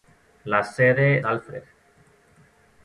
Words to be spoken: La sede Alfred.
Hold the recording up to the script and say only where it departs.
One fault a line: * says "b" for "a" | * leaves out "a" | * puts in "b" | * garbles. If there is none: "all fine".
all fine